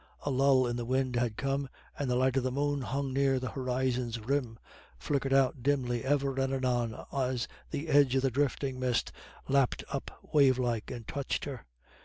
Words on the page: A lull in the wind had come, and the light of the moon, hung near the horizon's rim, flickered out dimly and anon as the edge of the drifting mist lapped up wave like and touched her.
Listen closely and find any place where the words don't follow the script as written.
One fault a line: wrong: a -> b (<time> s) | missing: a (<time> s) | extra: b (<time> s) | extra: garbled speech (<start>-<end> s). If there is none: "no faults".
extra: ever (6.0 s)